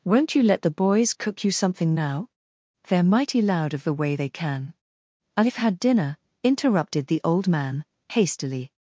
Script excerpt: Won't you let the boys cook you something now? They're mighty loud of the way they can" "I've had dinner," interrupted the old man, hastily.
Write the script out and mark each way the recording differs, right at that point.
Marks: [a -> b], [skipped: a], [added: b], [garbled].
Won't you let the boys cook you something now? They're mighty loud of the way they can" "I've had dinner," interrupted the old man, hastily.